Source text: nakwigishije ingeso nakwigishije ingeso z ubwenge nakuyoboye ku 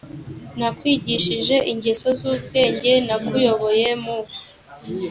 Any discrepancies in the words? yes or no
yes